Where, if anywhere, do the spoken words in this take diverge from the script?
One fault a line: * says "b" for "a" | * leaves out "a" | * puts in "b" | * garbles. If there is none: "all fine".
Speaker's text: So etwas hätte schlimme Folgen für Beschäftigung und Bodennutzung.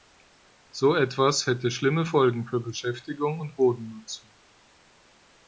all fine